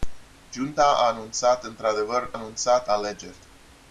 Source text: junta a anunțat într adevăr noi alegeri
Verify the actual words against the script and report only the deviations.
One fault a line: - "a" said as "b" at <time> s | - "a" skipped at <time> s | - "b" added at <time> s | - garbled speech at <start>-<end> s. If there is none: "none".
- "noi" said as "anunțat" at 2.3 s